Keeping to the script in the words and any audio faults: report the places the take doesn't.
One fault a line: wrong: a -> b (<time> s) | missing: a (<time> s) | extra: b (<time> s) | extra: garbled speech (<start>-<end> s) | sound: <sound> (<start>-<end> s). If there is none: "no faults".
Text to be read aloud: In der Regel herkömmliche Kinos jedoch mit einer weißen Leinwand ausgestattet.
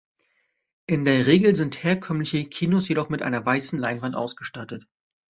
extra: sind (1.6 s)